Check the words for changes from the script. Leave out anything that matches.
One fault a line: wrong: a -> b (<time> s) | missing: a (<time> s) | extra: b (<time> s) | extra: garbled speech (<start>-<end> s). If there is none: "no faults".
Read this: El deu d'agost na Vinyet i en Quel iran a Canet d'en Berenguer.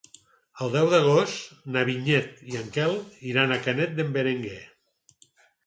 no faults